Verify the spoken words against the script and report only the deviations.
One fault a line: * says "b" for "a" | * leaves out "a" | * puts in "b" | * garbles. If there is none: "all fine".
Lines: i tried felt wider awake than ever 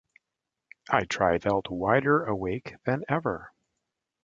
all fine